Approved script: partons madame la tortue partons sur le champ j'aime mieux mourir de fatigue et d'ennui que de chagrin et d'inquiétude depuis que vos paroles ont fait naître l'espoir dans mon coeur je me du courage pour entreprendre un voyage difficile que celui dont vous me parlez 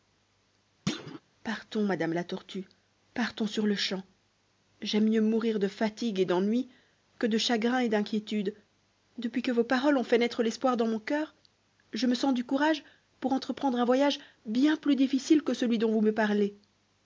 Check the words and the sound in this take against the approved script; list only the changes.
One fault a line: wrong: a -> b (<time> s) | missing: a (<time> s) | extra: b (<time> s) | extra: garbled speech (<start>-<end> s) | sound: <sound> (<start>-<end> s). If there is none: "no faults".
sound: thud (0.9-1.2 s)
extra: sens (12.1 s)
extra: bien plus (14.5 s)